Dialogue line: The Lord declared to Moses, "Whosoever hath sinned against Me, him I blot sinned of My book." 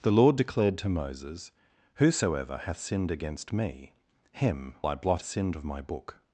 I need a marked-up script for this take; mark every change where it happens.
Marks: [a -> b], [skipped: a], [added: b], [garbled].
The Lord declared to Moses, "Whosoever hath sinned against Me, him I blot sinned of My book."